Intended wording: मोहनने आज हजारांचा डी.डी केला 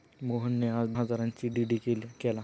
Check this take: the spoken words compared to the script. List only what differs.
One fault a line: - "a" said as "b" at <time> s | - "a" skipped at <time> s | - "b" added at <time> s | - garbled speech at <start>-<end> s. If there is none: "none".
none